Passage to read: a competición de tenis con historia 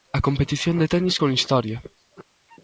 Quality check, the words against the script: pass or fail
pass